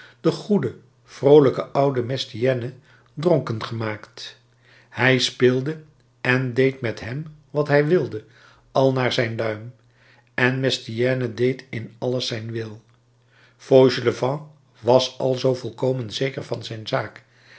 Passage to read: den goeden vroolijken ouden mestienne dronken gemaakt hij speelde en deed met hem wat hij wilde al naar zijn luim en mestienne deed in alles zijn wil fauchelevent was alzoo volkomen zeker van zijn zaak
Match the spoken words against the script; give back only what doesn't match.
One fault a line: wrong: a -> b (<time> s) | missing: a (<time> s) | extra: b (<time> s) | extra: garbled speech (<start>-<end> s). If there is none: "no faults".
no faults